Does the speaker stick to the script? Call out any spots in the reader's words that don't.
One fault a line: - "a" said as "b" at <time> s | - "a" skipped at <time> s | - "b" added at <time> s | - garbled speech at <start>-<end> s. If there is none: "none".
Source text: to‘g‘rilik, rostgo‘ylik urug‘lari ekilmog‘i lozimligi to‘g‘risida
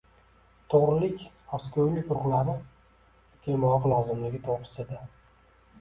none